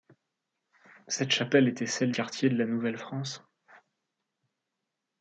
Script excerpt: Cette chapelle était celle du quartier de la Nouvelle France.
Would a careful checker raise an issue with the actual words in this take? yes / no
yes